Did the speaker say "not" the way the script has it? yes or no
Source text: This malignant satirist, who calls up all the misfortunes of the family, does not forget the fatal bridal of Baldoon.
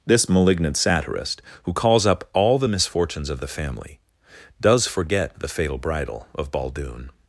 no